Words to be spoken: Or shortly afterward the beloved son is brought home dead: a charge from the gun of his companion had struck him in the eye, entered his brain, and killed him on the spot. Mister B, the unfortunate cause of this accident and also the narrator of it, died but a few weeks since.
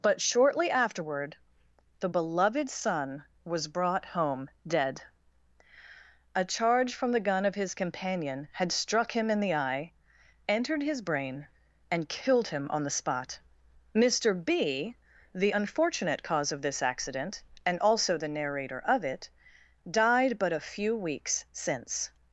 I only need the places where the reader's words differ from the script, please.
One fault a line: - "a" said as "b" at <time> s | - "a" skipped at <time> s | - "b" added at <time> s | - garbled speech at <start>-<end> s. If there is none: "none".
- "Or" said as "But" at 0.0 s
- "is" said as "was" at 3.4 s